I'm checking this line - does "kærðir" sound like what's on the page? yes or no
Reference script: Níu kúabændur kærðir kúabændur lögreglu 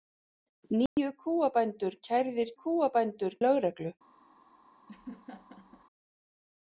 yes